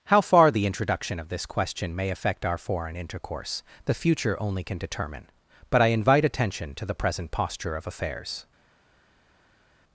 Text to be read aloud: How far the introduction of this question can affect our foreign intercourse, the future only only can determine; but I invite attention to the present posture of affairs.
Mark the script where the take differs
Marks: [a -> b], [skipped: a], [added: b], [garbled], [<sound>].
How far the introduction of this question [can -> may] affect our foreign intercourse, the future only [skipped: only] can determine; but I invite attention to the present posture of affairs.